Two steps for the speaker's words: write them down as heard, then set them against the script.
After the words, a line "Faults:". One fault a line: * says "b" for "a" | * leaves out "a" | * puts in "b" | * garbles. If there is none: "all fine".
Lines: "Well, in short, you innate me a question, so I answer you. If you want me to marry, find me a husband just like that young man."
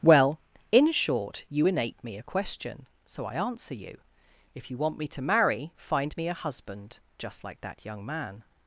"Well, in short, you innate me a question, so I answer you. If you want me to marry, find me a husband just like that young man."
Faults:
all fine